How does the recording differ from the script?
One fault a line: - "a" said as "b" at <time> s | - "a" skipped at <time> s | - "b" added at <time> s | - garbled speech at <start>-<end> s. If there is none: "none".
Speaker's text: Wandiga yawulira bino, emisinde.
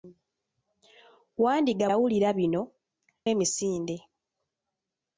none